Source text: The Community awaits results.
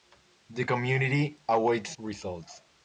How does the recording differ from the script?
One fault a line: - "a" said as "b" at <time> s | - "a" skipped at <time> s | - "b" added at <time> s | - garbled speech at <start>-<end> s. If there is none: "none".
none